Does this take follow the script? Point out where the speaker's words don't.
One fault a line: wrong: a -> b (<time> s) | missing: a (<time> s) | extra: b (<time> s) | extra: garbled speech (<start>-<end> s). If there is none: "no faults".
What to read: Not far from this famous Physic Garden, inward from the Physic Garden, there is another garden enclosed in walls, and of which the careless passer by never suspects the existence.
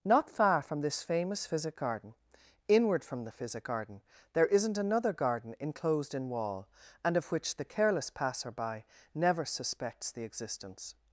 wrong: is -> isn't (4.5 s)
wrong: walls -> wall (6.3 s)